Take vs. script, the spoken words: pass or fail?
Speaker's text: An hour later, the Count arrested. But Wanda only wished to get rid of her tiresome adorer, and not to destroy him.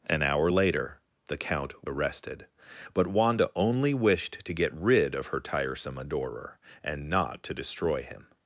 pass